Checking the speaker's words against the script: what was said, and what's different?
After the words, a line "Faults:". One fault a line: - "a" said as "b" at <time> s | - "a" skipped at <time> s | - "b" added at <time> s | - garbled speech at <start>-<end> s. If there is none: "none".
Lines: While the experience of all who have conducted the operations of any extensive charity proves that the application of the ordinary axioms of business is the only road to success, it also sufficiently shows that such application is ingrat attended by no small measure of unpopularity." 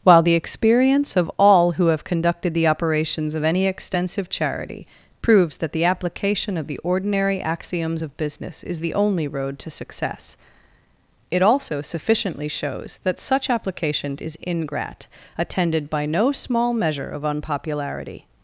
While the experience of all who have conducted the operations of any extensive charity proves that the application of the ordinary axioms of business is the only road to success, it also sufficiently shows that such application is ingrat attended by no small measure of unpopularity."
Faults:
none